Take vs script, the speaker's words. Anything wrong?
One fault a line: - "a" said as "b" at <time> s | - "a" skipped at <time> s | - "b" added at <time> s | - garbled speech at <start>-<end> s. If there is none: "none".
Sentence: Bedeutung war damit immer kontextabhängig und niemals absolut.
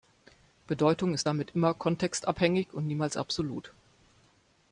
- "war" said as "ist" at 1.1 s